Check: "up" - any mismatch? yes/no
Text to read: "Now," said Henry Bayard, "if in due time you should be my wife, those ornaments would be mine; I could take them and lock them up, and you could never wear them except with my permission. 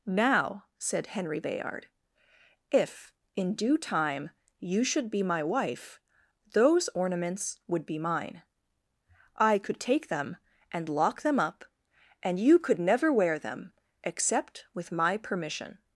no